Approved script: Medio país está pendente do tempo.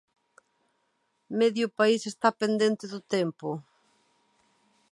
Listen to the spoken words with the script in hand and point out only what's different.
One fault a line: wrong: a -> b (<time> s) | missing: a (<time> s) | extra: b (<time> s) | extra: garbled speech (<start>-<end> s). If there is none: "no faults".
no faults